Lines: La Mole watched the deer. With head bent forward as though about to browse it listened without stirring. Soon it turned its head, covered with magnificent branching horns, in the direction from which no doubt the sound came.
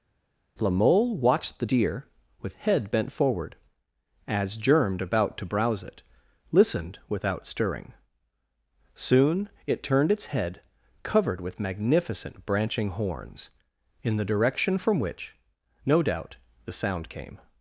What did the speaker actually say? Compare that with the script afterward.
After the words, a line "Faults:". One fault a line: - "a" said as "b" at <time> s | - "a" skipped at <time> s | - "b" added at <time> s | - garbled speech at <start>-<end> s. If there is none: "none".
La Mole watched the deer. With head bent forward as germed about to browse it listened without stirring. Soon it turned its head, covered with magnificent branching horns, in the direction from which no doubt the sound came.
Faults:
- "though" said as "germed" at 4.6 s